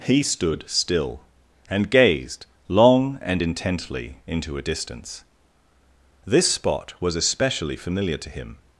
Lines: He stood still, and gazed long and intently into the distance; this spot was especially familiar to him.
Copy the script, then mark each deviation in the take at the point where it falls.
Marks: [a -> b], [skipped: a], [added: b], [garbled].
He stood still, and gazed long and intently into [the -> a] distance; this spot was especially familiar to him.